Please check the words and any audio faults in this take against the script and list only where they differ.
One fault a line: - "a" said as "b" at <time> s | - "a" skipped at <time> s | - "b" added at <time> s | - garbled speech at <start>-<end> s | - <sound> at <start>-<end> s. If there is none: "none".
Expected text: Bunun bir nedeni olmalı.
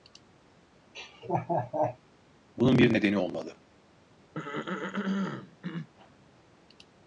- laugh at 0.9-2.0 s
- throat clearing at 4.3-5.9 s